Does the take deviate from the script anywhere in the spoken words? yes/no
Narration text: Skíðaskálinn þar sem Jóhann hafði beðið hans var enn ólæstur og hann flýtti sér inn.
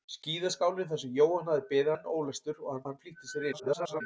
yes